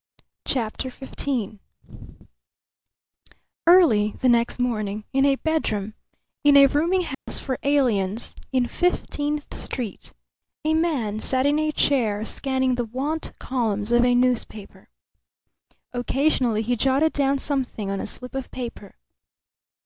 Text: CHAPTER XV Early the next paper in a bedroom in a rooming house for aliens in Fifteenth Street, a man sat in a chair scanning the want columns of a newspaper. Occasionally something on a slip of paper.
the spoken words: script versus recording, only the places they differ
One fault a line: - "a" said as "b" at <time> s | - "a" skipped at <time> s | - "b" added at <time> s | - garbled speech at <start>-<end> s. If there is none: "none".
- "paper" said as "morning" at 4.6 s
- "he jotted down" added at 16.6 s